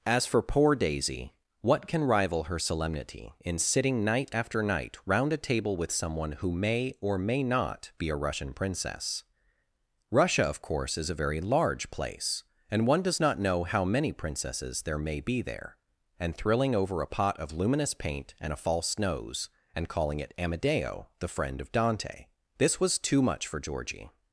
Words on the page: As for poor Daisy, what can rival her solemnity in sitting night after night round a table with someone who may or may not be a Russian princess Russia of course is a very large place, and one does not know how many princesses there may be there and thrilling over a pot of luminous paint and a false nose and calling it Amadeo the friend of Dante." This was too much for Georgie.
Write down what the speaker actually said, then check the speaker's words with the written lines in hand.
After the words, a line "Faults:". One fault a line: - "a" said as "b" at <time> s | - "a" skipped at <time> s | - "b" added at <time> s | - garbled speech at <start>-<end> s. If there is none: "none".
As for poor Daisy, what can rival her solemnity in sitting night after night round a table with someone who may or may not be a Russian princess Russia of course is a very large place, and one does not know how many princesses there may be there and thrilling over a pot of luminous paint and a false nose and calling it Amadeo the friend of Dante." This was too much for Georgie.
Faults:
none